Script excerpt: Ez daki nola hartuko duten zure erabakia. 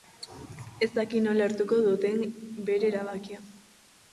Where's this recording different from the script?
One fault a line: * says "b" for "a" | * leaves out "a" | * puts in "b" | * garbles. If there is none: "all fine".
* says "bere" for "zure"